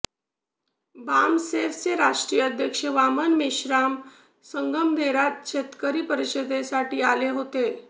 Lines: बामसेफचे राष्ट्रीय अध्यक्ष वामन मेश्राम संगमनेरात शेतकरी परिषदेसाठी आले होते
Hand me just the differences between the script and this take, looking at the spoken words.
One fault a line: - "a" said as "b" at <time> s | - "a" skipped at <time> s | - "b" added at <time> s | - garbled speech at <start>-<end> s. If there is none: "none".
none